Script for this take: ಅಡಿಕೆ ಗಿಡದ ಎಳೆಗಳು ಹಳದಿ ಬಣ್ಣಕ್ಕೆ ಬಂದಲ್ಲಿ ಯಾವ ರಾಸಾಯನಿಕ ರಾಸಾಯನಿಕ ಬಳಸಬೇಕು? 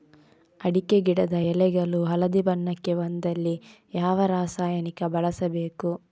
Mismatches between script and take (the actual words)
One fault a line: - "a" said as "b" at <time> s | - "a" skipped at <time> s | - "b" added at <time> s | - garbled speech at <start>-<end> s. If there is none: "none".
- "ರಾಸಾಯನಿಕ" skipped at 5.0 s